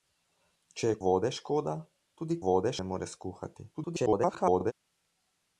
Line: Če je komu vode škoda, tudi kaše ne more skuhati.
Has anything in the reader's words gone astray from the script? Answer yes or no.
yes